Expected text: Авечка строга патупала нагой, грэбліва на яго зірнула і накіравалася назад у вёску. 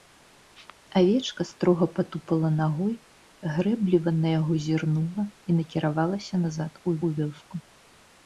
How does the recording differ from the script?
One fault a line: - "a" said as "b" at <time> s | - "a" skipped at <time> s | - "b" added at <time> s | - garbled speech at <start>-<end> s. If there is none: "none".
- "у" added at 7.0 s